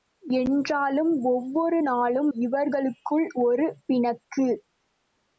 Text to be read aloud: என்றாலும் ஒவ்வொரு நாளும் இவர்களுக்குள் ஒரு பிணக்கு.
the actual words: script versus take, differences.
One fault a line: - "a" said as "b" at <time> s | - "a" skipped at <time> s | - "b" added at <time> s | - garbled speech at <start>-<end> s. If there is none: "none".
none